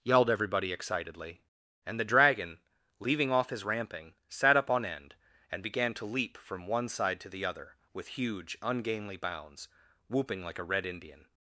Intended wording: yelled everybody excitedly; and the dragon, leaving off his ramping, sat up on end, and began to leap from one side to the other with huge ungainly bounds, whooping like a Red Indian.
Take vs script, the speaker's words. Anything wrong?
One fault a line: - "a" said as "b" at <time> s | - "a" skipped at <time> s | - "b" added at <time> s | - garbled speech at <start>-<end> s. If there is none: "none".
none